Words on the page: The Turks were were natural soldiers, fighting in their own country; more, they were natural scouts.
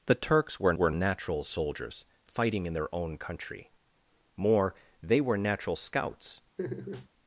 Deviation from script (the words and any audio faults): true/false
true